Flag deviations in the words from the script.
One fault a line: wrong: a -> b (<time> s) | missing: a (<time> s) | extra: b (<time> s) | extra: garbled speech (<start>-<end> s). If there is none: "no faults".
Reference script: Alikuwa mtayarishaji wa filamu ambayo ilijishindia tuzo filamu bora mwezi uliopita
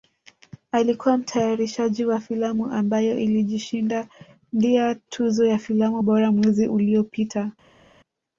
extra: ya (5.5 s)